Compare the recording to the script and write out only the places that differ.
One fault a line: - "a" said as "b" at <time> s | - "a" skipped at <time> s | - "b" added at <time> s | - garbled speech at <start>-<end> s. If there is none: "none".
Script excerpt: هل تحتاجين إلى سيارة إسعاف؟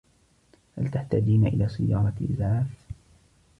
none